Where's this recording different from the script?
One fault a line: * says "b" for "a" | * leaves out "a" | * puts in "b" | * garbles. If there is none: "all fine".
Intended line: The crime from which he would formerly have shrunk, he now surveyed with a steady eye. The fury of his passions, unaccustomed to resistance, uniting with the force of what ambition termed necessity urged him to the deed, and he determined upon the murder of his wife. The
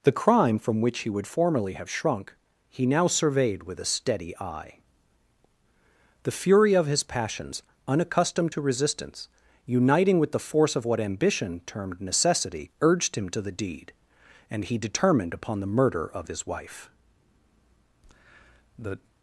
all fine